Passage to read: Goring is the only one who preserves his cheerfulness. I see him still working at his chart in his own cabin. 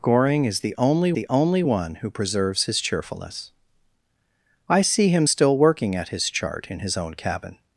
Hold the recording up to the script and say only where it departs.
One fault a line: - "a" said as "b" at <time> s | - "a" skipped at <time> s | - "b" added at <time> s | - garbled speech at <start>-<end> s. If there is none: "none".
- "the only" added at 1.1 s